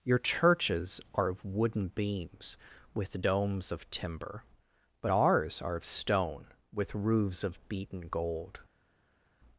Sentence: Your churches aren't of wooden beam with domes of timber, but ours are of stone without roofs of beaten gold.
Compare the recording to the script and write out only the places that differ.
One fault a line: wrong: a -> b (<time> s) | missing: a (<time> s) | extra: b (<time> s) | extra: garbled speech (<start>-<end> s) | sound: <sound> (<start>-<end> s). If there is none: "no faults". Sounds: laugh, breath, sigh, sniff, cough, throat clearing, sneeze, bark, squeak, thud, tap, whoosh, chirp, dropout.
wrong: aren't -> are (1.1 s)
wrong: beam -> beams (1.9 s)
wrong: without -> with (6.7 s)